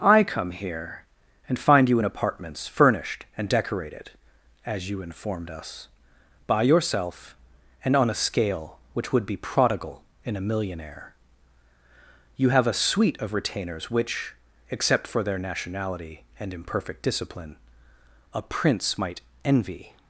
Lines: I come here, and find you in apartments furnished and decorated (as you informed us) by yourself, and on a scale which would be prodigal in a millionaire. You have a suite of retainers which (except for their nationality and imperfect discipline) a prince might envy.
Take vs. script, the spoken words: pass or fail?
pass